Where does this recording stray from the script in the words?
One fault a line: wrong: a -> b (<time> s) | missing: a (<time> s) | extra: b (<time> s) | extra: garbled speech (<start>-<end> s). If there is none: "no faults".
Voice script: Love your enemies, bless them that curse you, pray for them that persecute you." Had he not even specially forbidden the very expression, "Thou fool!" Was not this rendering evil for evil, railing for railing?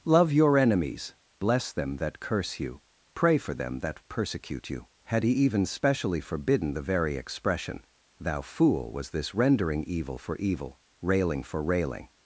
missing: not (5.3 s)
missing: not (9.1 s)